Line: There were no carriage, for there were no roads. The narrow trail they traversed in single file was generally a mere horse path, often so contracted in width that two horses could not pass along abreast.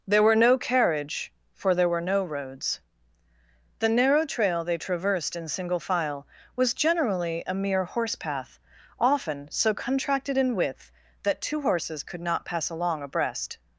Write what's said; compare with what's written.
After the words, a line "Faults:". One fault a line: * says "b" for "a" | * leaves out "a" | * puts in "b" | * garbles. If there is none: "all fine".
There were no carriage, for there were no roads. The narrow trail they traversed in single file was generally a mere horse path, often so contracted in width that two horses could not pass along abreast.
Faults:
all fine